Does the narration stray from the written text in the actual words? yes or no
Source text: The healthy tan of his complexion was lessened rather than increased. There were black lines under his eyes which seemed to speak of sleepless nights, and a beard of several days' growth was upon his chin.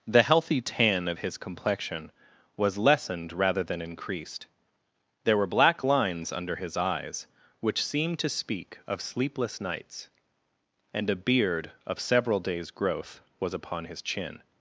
no